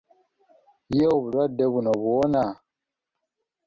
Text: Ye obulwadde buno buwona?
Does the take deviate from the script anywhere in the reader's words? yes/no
no